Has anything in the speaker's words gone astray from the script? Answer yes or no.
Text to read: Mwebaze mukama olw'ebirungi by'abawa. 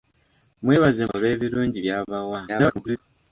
yes